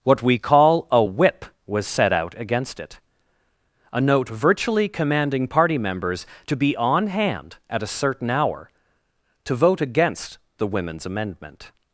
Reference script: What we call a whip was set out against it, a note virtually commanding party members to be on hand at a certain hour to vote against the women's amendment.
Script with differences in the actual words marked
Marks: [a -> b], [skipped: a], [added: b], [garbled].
What we call a whip was set out against it, a note virtually commanding party members to be on hand at a certain hour to vote against the women's amendment.